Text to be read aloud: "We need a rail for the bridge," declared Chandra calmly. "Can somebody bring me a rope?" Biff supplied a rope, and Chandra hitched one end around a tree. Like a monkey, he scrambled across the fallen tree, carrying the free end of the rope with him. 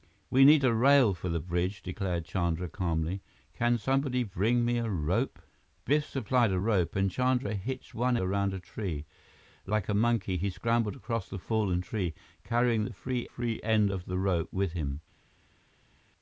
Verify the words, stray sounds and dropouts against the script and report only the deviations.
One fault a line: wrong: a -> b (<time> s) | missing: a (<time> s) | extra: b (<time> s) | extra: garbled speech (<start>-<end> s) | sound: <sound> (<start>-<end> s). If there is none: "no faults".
missing: end (8.2 s)
extra: free (13.3 s)